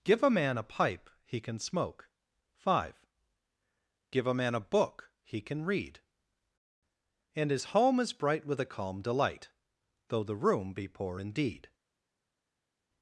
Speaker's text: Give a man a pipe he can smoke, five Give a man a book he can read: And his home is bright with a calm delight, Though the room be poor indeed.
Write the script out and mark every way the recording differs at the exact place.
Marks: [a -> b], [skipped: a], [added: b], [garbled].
Give a man a pipe he can smoke, five Give a man a book he can read: And his home is bright with a calm delight, Though the room be poor indeed.